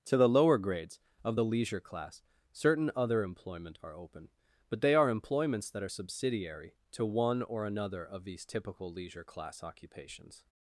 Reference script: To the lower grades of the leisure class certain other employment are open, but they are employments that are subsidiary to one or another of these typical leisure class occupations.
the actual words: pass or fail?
pass